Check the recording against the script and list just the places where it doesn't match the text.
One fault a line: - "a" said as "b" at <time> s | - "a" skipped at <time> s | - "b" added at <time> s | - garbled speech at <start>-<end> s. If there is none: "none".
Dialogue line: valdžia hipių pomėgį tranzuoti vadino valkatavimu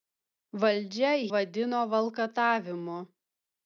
- "hipių pomėgį tranzuoti" skipped at 1.1 s